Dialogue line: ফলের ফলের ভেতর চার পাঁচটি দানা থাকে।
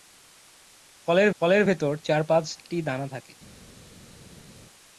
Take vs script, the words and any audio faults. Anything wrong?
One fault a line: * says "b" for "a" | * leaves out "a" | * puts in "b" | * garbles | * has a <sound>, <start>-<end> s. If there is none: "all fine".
all fine